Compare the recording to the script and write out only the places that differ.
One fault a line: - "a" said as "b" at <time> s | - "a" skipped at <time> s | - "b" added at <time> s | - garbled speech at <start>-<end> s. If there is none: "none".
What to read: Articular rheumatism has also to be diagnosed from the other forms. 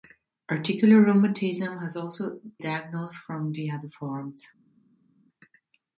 - "to be" skipped at 2.4 s